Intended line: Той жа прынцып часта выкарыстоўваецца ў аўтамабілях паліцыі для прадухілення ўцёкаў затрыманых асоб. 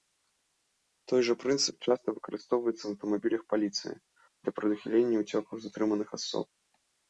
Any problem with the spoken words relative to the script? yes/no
no